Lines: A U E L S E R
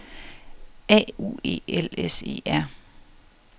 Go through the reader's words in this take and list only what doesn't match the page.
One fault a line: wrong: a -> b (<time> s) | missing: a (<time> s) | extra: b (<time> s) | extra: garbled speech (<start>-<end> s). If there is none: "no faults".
no faults